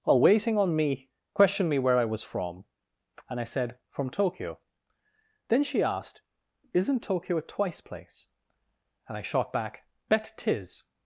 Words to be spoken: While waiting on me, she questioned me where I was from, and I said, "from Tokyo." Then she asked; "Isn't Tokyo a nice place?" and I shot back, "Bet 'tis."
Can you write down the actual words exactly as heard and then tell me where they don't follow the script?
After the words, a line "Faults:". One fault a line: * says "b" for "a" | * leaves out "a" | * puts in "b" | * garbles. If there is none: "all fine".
While waiting on me, questioned me where I was from, and I said, "from Tokyo." Then she asked; "Isn't Tokyo a twice place?" and I shot back, "Bet 'tis."
Faults:
* leaves out "she"
* says "twice" for "nice"